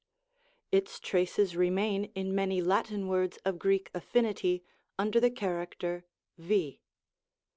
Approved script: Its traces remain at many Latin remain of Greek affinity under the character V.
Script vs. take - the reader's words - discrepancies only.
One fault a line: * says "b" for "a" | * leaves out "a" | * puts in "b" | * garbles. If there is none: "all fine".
* says "in" for "at"
* says "words" for "remain"